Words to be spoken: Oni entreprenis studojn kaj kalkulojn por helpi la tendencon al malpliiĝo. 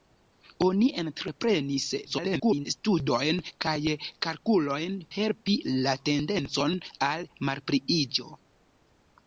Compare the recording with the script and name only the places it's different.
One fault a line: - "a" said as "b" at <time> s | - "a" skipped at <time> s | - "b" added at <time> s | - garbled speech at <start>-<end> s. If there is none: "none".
- garbled speech at 2.0-2.7 s
- "por" skipped at 5.0 s